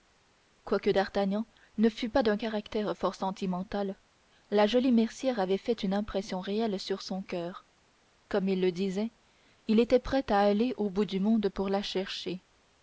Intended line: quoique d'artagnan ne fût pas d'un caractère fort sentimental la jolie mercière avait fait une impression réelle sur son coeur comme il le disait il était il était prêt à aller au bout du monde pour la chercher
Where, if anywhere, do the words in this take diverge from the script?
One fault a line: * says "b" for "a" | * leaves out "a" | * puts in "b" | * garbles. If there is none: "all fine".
* leaves out "il était"